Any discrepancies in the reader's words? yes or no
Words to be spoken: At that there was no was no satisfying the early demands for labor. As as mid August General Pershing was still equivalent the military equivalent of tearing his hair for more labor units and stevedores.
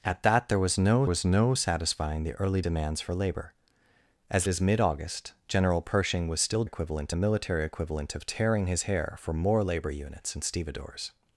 no